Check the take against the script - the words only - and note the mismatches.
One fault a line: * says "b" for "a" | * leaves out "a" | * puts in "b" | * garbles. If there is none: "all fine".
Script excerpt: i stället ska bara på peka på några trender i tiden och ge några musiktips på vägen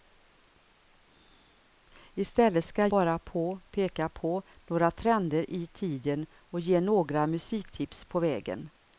all fine